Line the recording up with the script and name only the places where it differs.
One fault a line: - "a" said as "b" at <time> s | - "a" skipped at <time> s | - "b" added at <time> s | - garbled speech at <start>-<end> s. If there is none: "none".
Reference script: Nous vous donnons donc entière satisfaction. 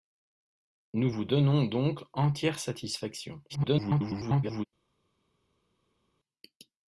- garbled speech at 3.5-4.7 s